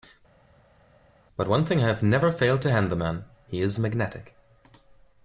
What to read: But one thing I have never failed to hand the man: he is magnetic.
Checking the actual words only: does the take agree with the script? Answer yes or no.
yes